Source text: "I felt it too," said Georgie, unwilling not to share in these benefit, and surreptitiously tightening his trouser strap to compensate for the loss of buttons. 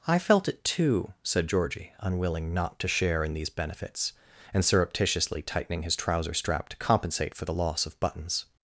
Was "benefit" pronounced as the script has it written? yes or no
no